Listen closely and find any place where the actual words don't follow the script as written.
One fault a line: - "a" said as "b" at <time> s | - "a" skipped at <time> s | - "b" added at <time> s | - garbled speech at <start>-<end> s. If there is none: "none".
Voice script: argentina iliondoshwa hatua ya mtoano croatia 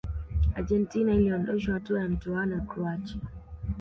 none